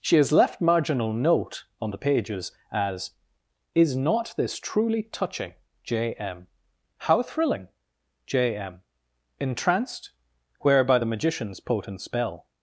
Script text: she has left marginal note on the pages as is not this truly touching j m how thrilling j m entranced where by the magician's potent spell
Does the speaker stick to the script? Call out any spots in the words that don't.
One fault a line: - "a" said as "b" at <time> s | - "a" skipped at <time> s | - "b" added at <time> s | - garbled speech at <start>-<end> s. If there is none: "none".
none